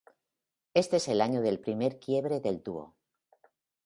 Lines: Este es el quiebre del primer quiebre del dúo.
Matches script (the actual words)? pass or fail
fail